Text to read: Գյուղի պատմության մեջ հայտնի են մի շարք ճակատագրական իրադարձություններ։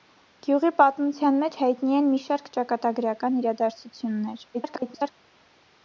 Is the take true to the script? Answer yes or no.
no